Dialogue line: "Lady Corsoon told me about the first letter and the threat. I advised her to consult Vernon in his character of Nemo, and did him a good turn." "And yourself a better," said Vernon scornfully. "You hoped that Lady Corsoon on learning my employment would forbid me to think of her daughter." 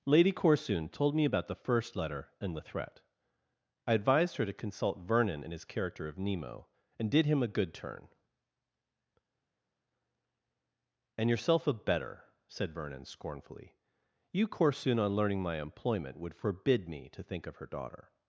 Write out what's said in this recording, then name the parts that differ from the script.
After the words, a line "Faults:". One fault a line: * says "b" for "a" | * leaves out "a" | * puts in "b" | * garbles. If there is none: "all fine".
"Lady Corsoon told me about the first letter and the threat. I advised her to consult Vernon in his character of Nemo, and did him a good turn." "And yourself a better," said Vernon scornfully. "You Corsoon on learning my employment would forbid me to think of her daughter."
Faults:
* leaves out "hoped that Lady"